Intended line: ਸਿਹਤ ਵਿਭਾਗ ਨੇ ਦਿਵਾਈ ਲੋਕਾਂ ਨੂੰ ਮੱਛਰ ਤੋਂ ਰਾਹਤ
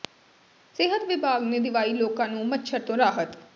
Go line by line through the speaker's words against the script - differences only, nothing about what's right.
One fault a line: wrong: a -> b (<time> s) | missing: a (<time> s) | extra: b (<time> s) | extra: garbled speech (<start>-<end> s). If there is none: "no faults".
no faults